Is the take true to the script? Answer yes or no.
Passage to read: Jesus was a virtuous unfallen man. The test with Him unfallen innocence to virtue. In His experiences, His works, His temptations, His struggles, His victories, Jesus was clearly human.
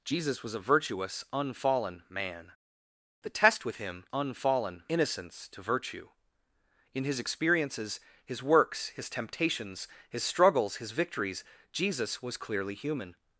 yes